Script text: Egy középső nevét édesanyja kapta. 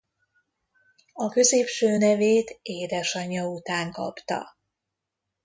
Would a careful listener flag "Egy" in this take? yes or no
yes